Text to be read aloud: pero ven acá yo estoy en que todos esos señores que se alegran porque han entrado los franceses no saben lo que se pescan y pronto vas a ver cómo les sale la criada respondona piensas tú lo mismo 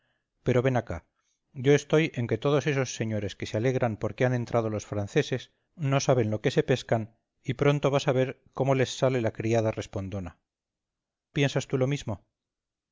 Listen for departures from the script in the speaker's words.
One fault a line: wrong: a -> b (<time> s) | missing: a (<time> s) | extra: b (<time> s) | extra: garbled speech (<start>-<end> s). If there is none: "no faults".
no faults